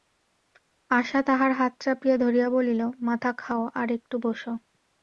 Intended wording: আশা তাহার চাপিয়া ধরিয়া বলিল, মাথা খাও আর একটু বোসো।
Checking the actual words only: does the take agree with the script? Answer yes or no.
no